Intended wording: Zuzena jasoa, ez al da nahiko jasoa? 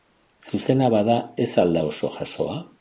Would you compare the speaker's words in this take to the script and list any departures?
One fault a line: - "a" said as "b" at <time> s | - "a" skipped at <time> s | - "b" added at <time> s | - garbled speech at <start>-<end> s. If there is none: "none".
- "jasoa" said as "bada" at 0.9 s
- "nahiko" said as "oso" at 1.9 s